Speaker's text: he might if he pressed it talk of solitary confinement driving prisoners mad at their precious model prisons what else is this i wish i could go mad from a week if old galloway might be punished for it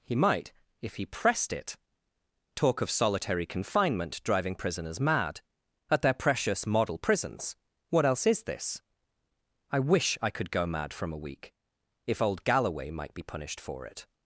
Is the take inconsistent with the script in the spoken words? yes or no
no